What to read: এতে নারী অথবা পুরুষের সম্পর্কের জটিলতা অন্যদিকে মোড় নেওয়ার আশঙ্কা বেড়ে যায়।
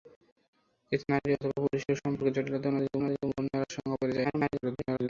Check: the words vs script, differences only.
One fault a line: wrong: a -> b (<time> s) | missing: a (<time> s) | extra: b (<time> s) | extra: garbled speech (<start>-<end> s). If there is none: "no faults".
extra: অন্যদিকে (3.0 s)
extra: garbled speech (4.2-5.1 s)